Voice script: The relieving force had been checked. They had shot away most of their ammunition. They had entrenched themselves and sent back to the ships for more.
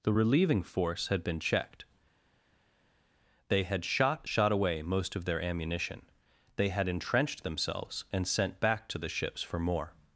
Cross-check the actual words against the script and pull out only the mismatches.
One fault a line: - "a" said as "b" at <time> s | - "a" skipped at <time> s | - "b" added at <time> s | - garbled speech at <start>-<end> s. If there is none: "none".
- "shot" added at 4.3 s